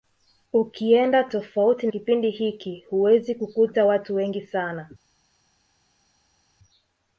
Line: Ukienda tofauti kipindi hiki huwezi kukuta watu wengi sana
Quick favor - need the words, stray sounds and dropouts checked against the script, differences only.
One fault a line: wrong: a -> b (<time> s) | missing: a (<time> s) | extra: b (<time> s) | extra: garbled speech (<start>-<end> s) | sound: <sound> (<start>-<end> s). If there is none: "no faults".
no faults